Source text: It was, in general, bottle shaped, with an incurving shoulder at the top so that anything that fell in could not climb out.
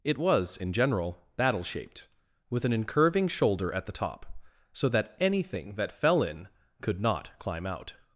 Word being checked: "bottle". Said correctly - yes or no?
no